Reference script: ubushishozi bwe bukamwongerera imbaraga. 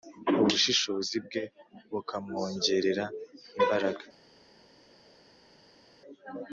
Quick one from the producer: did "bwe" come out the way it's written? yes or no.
yes